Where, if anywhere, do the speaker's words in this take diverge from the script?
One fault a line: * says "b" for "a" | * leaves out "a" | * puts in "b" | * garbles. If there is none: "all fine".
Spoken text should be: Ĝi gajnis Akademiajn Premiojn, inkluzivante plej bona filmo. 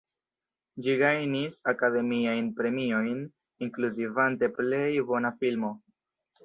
all fine